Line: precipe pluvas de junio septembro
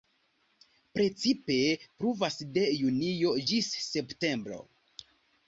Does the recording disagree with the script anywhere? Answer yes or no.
yes